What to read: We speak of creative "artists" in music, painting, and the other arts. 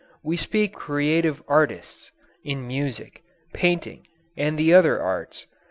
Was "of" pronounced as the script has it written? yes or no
no